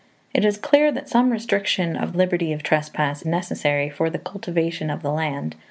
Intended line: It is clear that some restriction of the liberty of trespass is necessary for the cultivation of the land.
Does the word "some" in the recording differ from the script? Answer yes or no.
no